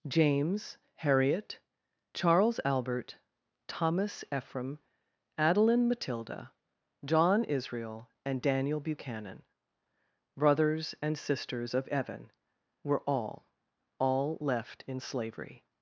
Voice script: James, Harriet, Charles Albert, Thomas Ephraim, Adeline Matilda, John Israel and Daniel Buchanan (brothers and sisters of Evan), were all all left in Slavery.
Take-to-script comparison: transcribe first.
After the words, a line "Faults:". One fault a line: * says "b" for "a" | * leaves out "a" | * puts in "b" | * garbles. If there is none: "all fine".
James, Harriet, Charles Albert, Thomas Ephraim, Adeline Matilda, John Israel and Daniel Buchanan (brothers and sisters of Evan), were all all left in Slavery.
Faults:
all fine